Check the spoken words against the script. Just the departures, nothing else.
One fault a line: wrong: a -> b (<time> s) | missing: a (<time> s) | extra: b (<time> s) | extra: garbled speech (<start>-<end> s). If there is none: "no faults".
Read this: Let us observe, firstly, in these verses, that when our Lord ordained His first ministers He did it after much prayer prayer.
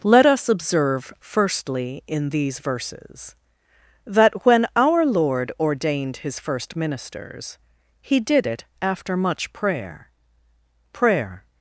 no faults